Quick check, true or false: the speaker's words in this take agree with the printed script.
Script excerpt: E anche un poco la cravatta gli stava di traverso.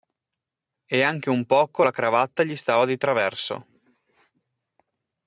true